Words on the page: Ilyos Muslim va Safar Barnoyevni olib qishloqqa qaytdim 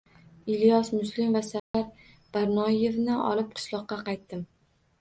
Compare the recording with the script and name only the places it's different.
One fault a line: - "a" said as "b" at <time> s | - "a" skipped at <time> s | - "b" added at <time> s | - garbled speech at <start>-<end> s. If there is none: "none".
none